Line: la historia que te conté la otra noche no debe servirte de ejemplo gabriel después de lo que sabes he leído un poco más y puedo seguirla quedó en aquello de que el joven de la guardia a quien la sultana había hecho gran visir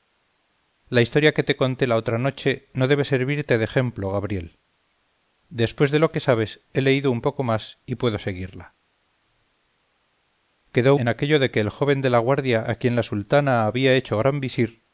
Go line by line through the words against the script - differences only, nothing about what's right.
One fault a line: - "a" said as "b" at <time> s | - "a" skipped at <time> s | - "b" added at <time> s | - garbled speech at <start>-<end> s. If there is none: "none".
none